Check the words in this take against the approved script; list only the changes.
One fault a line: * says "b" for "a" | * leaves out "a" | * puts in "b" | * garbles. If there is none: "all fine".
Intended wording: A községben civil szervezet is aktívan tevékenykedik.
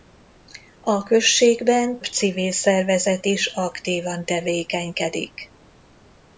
all fine